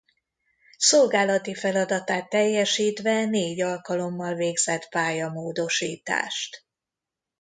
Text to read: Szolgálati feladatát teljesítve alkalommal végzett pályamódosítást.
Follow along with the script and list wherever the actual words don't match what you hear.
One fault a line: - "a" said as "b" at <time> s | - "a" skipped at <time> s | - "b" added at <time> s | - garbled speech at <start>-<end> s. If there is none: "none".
- "négy" added at 3.2 s